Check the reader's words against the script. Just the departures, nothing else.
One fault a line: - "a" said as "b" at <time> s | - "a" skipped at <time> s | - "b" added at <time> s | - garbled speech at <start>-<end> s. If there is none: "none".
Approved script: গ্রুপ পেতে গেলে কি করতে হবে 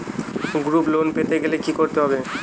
- "লোন" added at 0.9 s